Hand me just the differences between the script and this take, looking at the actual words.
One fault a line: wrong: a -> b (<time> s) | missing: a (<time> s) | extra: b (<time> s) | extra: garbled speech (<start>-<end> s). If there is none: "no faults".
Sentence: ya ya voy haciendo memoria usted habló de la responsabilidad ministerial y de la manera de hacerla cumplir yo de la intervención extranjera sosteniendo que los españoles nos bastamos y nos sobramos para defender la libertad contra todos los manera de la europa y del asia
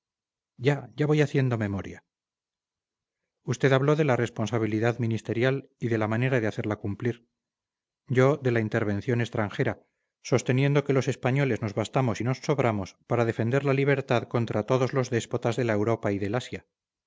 wrong: manera -> déspotas (15.1 s)